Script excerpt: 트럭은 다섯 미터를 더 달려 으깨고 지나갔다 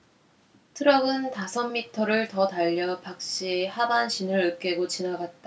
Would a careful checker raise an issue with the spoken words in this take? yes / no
yes